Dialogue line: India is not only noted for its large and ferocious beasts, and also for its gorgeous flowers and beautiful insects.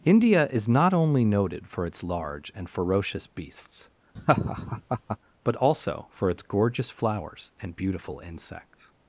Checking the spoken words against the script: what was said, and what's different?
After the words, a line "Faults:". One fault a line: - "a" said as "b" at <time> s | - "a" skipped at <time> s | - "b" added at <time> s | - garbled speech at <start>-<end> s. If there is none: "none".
India is not only noted for its large and ferocious beasts, but also for its gorgeous flowers and beautiful insects.
Faults:
- "and" said as "but" at 5.4 s